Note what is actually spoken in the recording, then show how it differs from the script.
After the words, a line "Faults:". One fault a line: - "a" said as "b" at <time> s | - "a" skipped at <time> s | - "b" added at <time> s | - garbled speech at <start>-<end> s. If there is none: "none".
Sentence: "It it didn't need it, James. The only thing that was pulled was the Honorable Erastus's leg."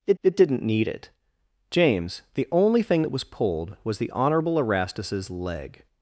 "It it didn't need it, James. The only thing that was pulled was the Honorable Erastus's leg."
Faults:
none